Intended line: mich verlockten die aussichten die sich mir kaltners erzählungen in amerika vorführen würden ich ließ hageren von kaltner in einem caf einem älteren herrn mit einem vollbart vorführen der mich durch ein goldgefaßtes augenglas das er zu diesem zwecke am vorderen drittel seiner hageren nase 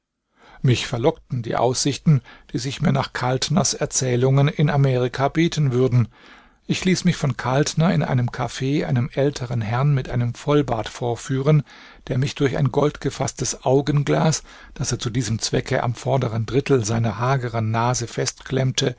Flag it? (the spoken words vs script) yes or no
yes